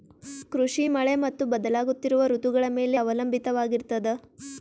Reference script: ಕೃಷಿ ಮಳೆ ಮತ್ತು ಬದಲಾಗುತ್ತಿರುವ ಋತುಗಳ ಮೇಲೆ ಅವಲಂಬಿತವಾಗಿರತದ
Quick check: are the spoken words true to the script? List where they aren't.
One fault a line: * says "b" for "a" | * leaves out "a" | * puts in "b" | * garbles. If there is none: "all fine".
all fine